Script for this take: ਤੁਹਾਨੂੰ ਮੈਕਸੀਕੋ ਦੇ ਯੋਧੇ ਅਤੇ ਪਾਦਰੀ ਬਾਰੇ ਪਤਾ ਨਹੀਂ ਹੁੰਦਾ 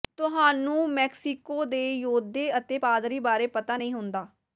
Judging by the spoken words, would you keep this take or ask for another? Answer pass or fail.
pass